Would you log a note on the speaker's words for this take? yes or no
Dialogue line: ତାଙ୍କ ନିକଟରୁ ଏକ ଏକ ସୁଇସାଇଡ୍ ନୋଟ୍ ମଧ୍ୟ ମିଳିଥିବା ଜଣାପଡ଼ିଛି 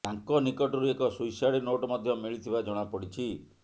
yes